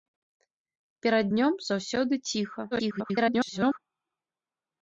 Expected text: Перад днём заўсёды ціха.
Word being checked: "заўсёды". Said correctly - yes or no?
yes